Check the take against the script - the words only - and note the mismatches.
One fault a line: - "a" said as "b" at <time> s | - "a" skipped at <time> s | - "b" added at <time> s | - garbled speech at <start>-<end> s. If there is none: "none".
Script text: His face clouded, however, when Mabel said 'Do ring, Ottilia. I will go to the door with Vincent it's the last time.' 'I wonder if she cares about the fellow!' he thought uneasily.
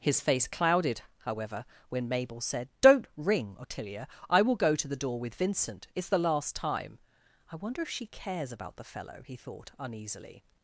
- "Do" said as "Don't" at 2.8 s